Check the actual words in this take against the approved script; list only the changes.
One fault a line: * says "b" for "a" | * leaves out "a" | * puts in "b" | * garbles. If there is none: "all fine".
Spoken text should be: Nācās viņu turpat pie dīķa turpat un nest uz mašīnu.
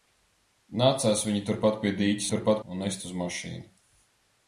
all fine